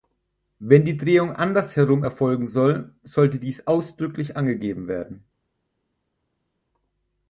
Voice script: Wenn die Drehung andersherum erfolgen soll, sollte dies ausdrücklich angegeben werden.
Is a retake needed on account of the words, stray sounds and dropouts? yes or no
no